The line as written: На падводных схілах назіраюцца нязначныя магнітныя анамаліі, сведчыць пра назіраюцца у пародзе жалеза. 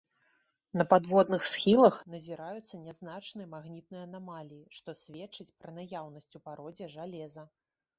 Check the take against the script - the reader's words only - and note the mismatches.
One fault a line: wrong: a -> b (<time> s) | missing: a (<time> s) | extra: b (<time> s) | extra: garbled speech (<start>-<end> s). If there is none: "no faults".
extra: што (4.8 s)
wrong: назіраюцца -> наяўнасць (5.8 s)